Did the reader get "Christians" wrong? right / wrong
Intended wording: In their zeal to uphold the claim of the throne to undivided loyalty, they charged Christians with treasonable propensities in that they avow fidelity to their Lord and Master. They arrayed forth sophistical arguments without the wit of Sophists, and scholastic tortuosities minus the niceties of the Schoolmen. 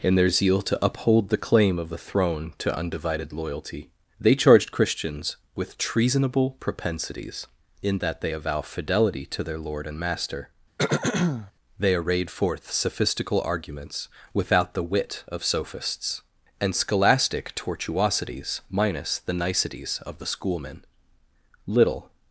right